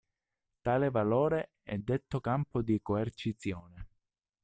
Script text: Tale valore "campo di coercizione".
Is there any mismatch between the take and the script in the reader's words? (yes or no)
yes